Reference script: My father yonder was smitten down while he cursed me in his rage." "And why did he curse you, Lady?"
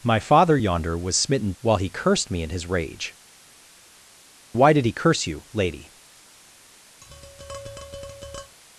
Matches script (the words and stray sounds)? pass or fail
fail